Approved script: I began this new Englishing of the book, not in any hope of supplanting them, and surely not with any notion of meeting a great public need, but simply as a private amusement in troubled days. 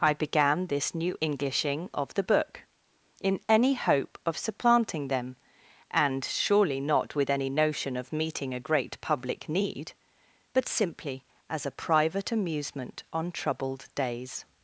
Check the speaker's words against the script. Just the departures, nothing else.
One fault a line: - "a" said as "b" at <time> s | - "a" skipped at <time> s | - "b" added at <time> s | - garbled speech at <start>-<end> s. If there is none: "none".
- "not" skipped at 2.6 s
- "in" said as "on" at 13.1 s